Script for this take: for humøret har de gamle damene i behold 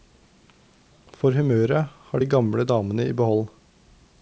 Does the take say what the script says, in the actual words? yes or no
yes